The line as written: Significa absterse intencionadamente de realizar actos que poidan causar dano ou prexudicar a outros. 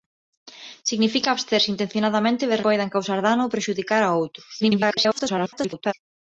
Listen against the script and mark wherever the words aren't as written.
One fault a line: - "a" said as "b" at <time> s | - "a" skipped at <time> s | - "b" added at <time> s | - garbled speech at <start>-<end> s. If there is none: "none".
- "realizar actos que" skipped at 2.6 s
- garbled speech at 4.6-5.9 s